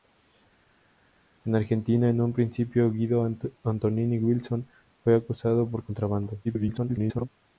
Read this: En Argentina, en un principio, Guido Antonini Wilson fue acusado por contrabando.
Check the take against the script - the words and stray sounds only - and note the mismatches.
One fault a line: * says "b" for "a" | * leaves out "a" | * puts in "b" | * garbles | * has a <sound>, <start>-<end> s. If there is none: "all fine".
* garbles